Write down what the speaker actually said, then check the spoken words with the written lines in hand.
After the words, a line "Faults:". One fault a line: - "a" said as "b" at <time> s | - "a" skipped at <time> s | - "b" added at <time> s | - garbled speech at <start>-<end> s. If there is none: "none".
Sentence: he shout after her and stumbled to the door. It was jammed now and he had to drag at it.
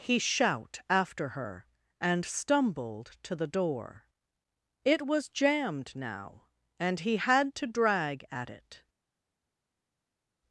he shout after her and stumbled to the door. It was jammed now and he had to drag at it.
Faults:
none